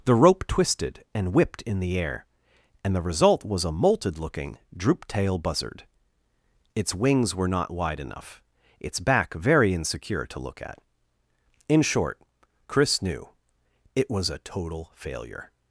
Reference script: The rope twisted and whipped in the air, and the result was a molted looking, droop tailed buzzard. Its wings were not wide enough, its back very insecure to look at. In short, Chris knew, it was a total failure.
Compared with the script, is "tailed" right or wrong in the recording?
wrong